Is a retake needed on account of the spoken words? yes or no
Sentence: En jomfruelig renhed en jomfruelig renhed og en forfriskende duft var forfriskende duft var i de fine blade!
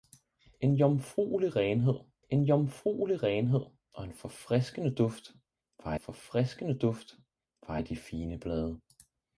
no